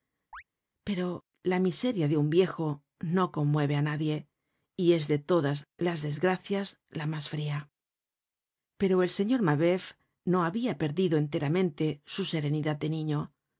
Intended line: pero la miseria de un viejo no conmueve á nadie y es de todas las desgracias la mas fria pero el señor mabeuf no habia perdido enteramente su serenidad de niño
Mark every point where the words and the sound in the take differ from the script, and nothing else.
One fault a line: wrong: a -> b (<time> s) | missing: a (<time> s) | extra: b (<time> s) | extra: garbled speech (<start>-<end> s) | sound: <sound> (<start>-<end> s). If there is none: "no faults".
sound: chirp (0.3-0.4 s)